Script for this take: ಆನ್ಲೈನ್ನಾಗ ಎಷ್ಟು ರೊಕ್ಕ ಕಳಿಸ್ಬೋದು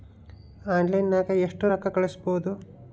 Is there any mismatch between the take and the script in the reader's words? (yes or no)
no